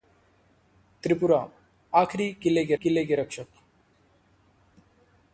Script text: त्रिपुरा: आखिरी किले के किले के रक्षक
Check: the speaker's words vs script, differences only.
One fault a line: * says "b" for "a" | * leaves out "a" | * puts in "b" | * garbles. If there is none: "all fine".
all fine